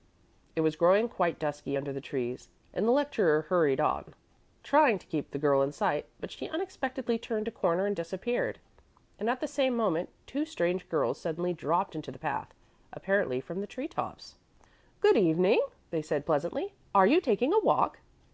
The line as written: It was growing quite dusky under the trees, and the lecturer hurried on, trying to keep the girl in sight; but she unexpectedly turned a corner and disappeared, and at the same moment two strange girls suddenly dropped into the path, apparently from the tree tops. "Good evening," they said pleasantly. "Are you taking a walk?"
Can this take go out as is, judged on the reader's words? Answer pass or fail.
pass